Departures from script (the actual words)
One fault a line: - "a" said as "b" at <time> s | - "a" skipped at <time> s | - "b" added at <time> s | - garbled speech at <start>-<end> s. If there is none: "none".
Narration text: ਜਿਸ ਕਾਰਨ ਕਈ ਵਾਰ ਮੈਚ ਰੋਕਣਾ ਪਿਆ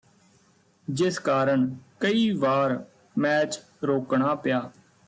none